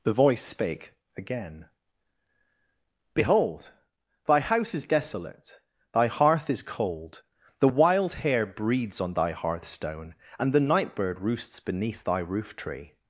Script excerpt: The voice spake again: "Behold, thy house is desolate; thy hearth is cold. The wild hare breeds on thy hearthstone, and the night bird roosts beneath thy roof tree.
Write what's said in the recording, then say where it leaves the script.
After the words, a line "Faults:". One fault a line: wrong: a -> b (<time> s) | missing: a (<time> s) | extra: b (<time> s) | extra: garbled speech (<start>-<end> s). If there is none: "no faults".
The voice spake again: "Behold, thy house is desolate; thy hearth is cold. The wild hare breeds on thy hearthstone, and the night bird roosts beneath thy roof tree.
Faults:
no faults